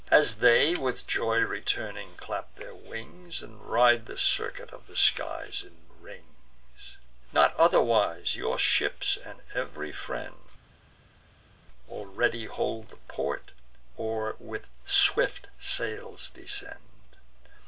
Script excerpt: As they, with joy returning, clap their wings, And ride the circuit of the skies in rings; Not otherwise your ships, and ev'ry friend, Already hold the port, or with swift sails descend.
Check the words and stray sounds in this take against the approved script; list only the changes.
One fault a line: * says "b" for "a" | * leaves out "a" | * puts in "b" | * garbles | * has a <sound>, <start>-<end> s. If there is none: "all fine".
all fine